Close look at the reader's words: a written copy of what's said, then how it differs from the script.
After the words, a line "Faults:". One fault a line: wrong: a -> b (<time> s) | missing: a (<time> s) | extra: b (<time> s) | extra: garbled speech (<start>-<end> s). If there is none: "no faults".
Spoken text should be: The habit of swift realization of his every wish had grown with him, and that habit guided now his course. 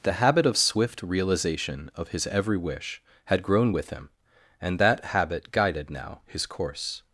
The habit of swift realization of his every wish had grown with him, and that habit guided now his course.
Faults:
no faults